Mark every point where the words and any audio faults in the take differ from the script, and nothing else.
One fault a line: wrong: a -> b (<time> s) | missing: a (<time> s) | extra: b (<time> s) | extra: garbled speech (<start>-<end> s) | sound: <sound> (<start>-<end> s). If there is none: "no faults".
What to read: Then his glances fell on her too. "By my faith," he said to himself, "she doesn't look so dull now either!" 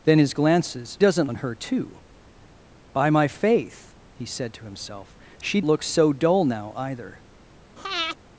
wrong: fell -> doesn't (1.0 s)
missing: doesn't (5.6 s)
sound: breath (7.8-8.2 s)